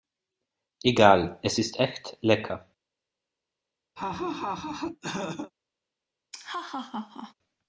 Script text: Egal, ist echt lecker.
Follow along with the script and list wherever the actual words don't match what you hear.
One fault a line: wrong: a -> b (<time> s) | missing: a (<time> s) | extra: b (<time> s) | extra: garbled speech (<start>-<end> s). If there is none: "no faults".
extra: es (1.4 s)